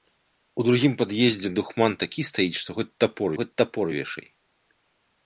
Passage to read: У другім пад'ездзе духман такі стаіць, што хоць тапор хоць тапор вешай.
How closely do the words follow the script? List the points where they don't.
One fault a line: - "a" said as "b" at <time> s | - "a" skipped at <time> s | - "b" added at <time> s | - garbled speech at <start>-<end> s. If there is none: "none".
none